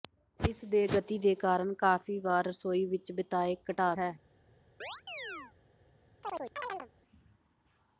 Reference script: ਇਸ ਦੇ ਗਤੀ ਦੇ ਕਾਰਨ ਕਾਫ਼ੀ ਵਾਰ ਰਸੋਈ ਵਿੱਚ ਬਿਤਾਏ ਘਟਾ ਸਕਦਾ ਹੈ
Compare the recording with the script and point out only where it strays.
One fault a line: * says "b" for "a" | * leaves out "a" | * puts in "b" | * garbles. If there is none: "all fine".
* leaves out "ਸਕਦਾ"